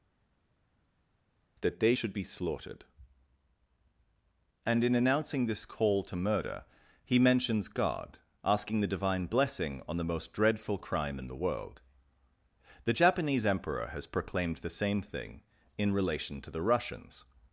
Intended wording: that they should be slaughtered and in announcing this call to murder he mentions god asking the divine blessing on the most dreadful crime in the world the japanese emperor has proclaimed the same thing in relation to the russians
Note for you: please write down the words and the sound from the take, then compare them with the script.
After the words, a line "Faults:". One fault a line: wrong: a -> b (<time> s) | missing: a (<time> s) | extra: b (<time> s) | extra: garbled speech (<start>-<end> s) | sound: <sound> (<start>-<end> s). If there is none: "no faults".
that they should be slaughtered and in announcing this call to murder he mentions god asking the divine blessing on the most dreadful crime in the world the japanese emperor has proclaimed the same thing in relation to the russians
Faults:
no faults